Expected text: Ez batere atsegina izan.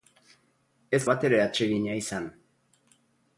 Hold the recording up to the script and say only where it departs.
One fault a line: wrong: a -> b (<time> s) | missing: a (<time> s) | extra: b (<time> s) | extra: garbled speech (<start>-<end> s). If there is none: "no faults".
no faults